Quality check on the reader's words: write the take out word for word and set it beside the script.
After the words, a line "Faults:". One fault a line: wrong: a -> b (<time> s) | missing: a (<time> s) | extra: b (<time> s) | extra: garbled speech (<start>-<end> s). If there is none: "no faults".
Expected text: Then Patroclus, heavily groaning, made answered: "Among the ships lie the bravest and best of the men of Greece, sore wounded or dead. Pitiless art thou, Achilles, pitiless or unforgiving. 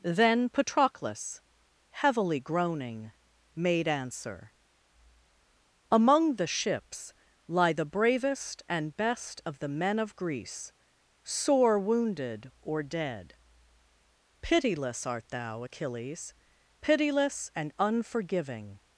Then Patroclus, heavily groaning, made answer: "Among the ships lie the bravest and best of the men of Greece, sore wounded or dead. Pitiless art thou, Achilles, pitiless and unforgiving.
Faults:
wrong: answered -> answer (3.9 s)
wrong: or -> and (17.6 s)